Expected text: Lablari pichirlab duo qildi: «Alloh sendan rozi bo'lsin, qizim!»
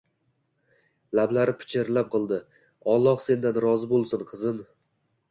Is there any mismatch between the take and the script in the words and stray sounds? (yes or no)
yes